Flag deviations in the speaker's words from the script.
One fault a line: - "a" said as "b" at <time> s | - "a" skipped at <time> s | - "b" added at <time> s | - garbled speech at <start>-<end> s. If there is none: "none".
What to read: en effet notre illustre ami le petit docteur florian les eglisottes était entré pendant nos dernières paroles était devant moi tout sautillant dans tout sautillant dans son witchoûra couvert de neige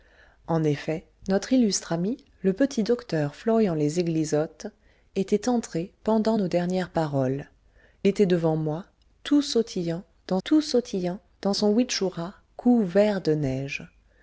none